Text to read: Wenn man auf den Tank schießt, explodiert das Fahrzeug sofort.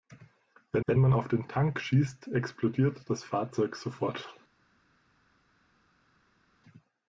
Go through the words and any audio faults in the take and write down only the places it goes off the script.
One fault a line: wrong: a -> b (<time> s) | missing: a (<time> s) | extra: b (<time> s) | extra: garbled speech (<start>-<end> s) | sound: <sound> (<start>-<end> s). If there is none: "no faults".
extra: wenn (0.9 s)